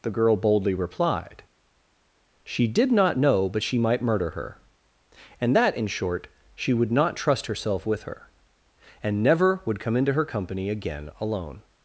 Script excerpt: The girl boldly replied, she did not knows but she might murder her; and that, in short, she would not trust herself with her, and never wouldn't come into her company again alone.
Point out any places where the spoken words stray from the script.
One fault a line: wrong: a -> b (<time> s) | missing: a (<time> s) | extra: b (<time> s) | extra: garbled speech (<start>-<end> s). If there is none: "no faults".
wrong: knows -> know (3.2 s)
wrong: wouldn't -> would (9.6 s)